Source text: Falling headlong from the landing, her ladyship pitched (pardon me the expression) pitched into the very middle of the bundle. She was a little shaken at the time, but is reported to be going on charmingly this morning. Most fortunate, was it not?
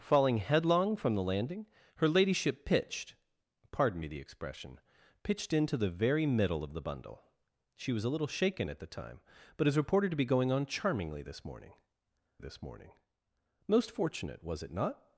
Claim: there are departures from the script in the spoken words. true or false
true